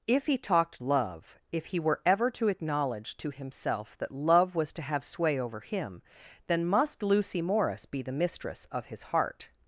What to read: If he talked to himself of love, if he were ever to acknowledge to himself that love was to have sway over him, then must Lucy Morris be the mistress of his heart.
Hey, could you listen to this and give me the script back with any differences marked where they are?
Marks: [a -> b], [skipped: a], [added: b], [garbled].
If he talked [skipped: to himself of] love, if he were ever to acknowledge to himself that love was to have sway over him, then must Lucy Morris be the mistress of his heart.